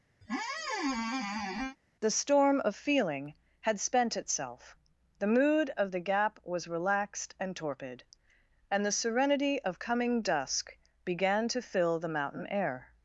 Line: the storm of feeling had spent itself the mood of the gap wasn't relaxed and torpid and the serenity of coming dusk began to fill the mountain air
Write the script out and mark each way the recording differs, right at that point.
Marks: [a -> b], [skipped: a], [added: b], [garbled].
the storm of feeling had spent itself the mood of the gap [wasn't -> was] relaxed and torpid and the serenity of coming dusk began to fill the mountain air